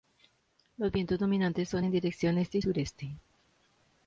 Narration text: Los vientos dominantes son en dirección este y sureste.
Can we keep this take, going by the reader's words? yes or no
yes